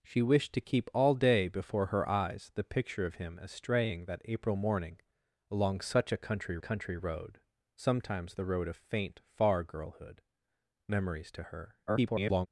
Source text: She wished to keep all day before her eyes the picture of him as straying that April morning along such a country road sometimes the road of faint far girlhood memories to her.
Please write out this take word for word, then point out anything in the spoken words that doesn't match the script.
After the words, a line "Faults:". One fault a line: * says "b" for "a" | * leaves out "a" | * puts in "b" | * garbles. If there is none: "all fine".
She wished to keep all day before her eyes the picture of him as straying that April morning along such a country country road sometimes the road of faint far girlhood memories to her. [garbled]
Faults:
* puts in "country"
* garbles